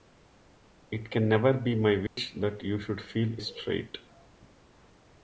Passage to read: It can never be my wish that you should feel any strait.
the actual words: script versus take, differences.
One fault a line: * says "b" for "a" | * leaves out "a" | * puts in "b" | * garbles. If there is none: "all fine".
* leaves out "any"